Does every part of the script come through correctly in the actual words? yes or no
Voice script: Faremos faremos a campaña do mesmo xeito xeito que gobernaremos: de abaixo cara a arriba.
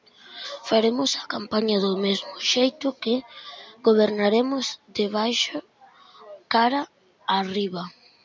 no